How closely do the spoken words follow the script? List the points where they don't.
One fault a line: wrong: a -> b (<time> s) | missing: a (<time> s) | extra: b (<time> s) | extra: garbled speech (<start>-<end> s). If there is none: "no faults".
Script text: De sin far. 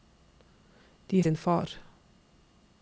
no faults